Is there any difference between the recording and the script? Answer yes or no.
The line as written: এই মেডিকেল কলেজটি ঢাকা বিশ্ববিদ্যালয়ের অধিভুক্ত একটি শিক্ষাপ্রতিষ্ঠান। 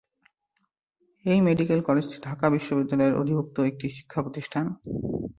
no